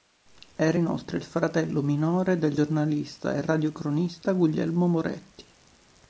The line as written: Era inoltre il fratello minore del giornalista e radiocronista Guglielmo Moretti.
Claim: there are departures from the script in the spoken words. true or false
false